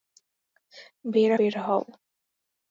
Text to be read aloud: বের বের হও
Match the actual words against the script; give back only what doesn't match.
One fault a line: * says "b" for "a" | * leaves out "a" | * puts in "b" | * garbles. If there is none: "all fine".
all fine